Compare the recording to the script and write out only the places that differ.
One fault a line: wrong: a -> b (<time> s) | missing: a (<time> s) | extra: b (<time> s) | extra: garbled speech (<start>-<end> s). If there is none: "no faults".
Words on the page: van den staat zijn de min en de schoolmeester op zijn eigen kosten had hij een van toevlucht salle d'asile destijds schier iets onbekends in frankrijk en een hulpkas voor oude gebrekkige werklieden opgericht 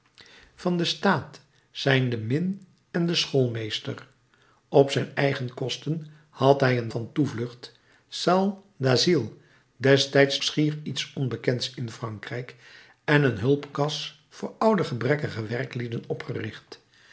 no faults